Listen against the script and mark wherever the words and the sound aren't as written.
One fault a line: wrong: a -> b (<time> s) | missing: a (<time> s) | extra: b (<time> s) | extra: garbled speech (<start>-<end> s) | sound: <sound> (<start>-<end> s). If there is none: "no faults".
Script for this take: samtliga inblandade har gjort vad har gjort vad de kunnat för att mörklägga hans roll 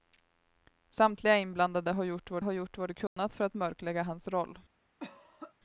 sound: dropout (3.1-3.2 s)
sound: cough (5.0-5.5 s)